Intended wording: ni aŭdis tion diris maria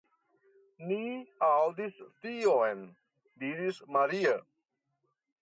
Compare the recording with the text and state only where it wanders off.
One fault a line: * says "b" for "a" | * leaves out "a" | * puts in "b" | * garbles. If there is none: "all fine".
all fine